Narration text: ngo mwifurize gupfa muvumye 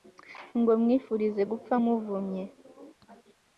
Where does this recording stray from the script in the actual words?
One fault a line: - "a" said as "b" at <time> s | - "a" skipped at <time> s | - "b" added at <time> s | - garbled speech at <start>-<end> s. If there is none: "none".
none